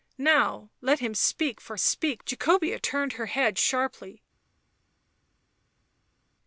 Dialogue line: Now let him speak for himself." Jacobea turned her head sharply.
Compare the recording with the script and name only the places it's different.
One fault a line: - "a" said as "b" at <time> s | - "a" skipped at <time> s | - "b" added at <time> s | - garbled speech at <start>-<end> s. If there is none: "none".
- "himself" said as "speak" at 1.8 s